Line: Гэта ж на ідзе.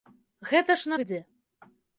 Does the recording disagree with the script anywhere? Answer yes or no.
no